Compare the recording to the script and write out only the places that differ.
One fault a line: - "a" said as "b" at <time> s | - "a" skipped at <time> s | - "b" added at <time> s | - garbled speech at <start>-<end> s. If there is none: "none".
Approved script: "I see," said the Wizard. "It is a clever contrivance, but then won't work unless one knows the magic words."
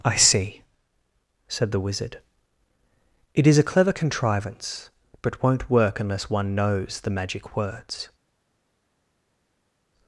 - "then" skipped at 5.4 s